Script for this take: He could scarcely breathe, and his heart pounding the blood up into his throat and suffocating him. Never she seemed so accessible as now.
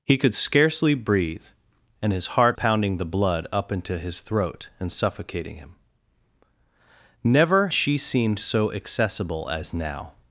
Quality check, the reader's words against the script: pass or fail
pass